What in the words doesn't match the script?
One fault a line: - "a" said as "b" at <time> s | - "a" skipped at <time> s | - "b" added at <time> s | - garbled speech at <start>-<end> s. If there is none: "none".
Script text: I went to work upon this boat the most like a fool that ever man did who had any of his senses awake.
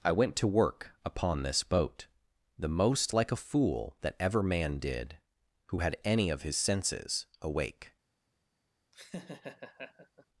none